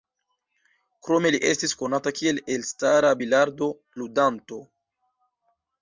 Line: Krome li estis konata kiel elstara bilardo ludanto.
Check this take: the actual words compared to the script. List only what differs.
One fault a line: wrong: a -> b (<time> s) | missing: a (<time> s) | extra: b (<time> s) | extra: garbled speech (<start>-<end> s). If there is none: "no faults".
no faults